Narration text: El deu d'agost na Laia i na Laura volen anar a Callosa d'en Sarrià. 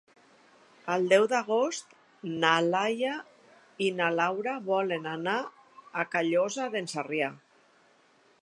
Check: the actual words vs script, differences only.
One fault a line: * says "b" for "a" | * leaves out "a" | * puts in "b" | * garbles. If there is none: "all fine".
all fine